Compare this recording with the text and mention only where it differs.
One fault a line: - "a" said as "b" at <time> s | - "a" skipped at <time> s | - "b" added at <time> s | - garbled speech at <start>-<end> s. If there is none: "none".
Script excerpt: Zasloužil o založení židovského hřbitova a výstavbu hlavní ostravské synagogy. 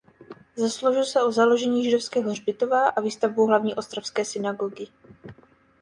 - "se" added at 1.1 s